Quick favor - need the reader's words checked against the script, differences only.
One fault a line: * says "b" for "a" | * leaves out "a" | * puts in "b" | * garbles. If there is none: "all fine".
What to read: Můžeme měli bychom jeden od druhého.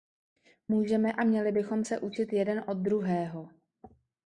* puts in "a"
* puts in "se učit"